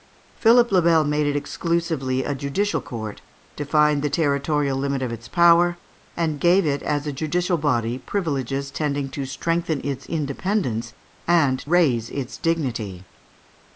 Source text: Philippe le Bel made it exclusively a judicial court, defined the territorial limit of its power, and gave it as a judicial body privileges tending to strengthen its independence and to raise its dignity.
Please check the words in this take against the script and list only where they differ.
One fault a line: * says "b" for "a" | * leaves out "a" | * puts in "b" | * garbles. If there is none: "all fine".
* leaves out "to"